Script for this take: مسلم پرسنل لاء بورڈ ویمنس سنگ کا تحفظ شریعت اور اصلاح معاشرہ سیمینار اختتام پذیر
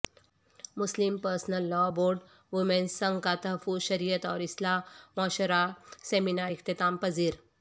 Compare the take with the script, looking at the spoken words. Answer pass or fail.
pass